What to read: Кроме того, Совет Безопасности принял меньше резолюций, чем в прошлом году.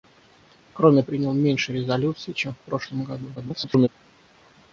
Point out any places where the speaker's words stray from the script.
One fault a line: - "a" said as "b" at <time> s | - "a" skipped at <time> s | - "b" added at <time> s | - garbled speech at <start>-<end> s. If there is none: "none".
- "того Совет Безопасности" skipped at 1.0 s
- garbled speech at 3.4-3.9 s